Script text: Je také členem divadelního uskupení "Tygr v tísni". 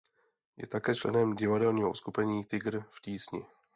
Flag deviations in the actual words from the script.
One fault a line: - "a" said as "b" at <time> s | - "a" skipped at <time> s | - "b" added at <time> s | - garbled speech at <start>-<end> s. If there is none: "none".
none